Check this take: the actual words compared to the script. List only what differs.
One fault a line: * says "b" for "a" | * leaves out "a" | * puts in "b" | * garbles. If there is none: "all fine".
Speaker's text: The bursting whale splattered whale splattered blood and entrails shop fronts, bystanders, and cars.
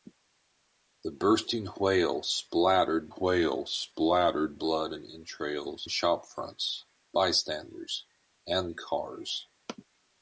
all fine